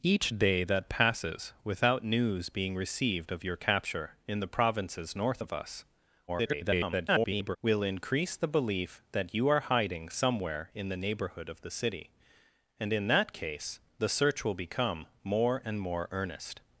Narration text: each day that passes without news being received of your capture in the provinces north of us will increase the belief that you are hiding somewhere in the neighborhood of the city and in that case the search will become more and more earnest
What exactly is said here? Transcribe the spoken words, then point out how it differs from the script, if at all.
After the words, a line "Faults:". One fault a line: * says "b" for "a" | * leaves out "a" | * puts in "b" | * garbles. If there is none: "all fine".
each day that passes without news being received of your capture in the provinces north of us [garbled] will increase the belief that you are hiding somewhere in the neighborhood of the city and in that case the search will become more and more earnest
Faults:
* garbles